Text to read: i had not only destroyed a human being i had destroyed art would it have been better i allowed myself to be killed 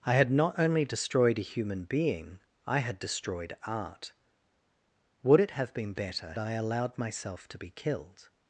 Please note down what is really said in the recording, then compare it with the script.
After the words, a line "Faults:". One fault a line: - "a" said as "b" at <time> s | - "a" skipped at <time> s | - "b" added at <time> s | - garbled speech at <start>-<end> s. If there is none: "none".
i had not only destroyed a human being i had destroyed art would it have been better i allowed myself to be killed
Faults:
none